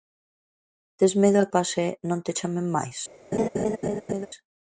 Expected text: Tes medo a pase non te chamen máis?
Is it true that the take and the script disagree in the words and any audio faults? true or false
true